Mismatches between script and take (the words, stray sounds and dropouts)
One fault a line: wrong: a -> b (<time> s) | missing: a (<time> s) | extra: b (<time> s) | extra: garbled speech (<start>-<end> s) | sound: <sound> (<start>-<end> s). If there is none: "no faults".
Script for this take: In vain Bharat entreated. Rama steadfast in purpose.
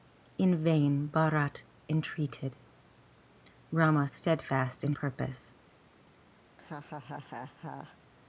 sound: laugh (6.5-8.0 s)